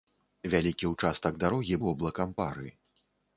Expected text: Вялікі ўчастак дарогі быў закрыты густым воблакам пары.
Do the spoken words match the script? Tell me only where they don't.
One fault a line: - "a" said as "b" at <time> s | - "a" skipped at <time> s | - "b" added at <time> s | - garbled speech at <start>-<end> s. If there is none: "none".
- "быў закрыты густым" skipped at 1.8 s